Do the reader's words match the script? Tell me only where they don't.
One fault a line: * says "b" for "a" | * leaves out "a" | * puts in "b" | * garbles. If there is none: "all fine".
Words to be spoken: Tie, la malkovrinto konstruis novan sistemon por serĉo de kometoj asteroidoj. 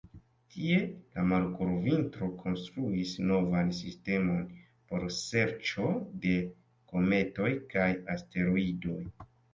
* puts in "kaj"